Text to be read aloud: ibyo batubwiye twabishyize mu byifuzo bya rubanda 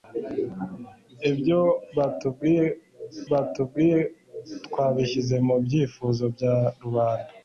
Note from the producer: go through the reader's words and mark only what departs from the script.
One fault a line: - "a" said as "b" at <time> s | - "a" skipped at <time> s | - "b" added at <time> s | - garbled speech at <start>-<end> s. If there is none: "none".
- "batubwiye" added at 3.3 s